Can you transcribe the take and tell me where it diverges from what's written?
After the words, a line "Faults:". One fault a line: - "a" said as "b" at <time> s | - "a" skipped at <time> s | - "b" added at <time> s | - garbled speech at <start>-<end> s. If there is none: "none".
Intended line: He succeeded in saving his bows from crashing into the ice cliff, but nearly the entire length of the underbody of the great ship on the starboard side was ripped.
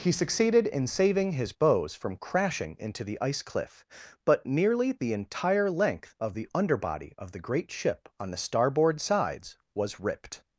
He succeeded in saving his bows from crashing into the ice cliff, but nearly the entire length of the underbody of the great ship on the starboard sides was ripped.
Faults:
- "side" said as "sides" at 9.0 s